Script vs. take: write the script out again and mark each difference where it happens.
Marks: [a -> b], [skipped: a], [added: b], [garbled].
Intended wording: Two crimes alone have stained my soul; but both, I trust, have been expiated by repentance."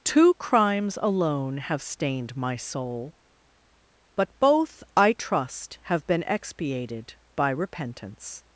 Two crimes alone have stained my soul; but both, I trust, have been expiated by repentance."